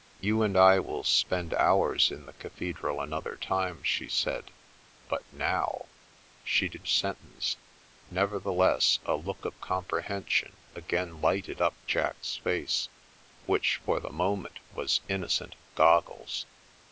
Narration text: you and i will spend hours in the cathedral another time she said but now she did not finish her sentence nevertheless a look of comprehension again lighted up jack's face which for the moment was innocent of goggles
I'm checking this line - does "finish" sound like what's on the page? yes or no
no